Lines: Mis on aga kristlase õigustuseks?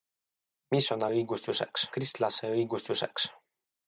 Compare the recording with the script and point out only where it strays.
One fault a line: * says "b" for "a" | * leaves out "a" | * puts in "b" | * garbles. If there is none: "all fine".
* says "õigustuseks" for "aga"